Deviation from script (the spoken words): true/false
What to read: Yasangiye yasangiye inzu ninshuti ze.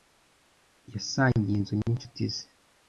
true